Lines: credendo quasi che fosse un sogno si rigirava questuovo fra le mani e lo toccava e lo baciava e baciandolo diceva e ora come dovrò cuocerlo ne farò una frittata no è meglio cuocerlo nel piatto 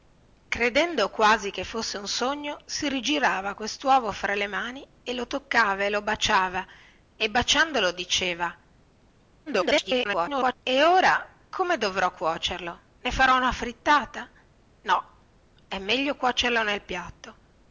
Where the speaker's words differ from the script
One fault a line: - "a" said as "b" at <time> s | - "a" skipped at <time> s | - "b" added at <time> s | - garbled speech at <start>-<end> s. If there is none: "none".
- garbled speech at 9.5-10.6 s